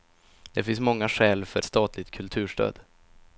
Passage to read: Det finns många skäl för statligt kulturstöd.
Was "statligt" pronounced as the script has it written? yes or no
yes